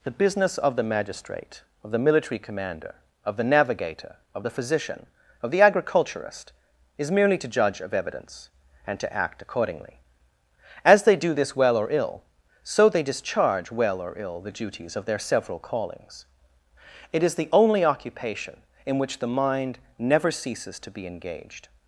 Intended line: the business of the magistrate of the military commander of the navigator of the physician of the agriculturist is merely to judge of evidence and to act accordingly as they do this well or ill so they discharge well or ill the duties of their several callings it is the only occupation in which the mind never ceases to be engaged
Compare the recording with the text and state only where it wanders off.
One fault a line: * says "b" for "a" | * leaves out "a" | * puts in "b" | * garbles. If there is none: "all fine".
all fine